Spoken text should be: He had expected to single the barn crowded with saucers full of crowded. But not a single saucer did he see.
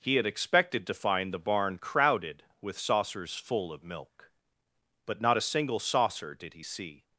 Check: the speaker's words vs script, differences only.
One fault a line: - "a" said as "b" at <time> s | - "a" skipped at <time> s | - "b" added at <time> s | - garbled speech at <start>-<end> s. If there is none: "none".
- "single" said as "find" at 0.9 s
- "crowded" said as "milk" at 3.8 s